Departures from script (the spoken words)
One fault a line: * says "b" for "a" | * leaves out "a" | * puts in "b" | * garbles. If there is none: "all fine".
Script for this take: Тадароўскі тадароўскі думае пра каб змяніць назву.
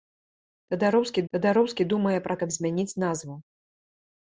all fine